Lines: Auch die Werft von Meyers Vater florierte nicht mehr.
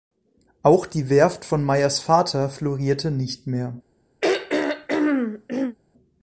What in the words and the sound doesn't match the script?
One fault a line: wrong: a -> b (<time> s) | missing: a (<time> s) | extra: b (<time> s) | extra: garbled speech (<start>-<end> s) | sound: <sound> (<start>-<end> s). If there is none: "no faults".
sound: throat clearing (4.2-5.8 s)